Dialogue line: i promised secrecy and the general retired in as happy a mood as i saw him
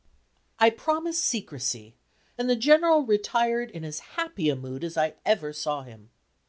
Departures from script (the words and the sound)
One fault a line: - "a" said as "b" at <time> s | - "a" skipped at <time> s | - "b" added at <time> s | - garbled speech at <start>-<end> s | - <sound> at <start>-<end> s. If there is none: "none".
- "ever" added at 5.3 s